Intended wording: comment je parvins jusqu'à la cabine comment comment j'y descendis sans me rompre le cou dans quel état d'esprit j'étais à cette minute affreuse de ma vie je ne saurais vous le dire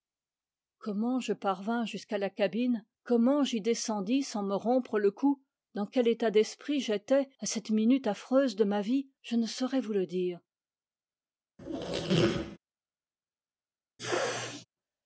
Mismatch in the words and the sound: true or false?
true